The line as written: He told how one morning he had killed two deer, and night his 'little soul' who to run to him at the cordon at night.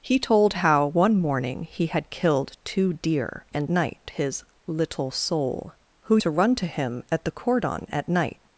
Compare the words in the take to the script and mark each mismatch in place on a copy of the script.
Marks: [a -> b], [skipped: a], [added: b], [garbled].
He told how one morning he had killed two deer, and night his 'little soul' who to run to him at the cordon at night.